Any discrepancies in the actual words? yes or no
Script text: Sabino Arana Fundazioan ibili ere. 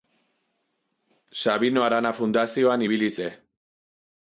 no